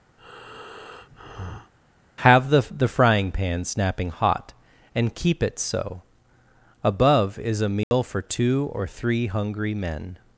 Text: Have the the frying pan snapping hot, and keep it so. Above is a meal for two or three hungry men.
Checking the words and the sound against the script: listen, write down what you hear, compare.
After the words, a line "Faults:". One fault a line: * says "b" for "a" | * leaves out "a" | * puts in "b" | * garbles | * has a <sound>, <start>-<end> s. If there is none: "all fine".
Have the the frying pan snapping hot, and keep it so. Above is a meal for two or three hungry men.
Faults:
* has a breath, 0.2-1.7 s
* has a dropout, 7.8-7.9 s